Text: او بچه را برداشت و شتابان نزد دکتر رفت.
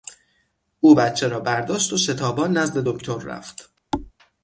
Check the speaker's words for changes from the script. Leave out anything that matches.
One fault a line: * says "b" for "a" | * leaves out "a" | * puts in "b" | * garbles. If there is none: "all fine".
all fine